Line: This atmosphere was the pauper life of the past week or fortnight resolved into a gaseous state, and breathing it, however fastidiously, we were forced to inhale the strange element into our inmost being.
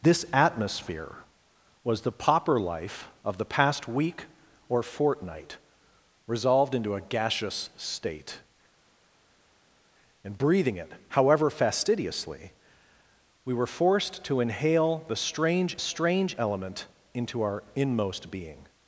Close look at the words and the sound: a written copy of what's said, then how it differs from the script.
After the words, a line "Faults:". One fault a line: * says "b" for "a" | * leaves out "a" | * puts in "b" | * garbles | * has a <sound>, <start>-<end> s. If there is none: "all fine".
This atmosphere was the pauper life of the past week or fortnight resolved into a gaseous state, and breathing it, however fastidiously, we were forced to inhale the strange strange element into our inmost being.
Faults:
* puts in "strange"